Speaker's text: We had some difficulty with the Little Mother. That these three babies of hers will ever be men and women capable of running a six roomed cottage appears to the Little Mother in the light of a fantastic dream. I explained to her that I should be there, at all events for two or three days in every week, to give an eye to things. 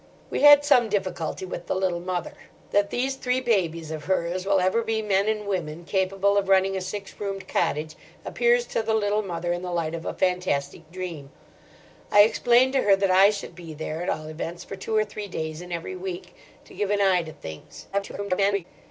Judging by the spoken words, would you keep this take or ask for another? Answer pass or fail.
fail